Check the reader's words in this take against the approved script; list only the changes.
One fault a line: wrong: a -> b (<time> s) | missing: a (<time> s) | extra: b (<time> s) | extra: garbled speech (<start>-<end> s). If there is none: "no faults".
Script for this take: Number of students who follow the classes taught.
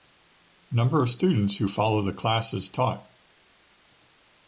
no faults